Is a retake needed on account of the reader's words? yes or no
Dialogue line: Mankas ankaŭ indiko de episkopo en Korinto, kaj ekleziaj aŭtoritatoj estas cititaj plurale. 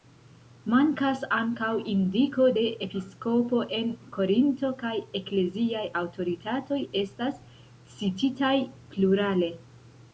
no